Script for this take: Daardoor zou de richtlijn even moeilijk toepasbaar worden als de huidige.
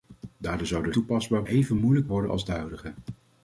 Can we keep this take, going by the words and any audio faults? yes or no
no